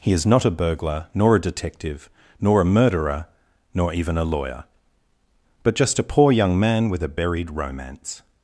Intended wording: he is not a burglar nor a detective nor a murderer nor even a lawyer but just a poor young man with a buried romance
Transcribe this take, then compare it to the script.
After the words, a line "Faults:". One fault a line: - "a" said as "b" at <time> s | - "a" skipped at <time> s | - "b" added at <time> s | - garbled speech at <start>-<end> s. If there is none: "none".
he is not a burglar nor a detective nor a murderer nor even a lawyer but just a poor young man with a buried romance
Faults:
none